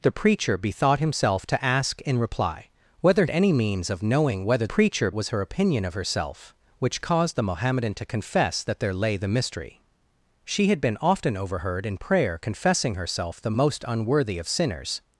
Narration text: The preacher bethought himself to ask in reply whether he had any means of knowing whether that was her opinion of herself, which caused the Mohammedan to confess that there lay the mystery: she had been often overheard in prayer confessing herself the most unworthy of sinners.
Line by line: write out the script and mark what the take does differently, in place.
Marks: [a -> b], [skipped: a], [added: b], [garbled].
The preacher bethought himself to ask in reply whether [skipped: he had] any means of knowing whether [that -> preacher] was her opinion of herself, which caused the Mohammedan to confess that there lay the mystery: she had been often overheard in prayer confessing herself the most unworthy of sinners.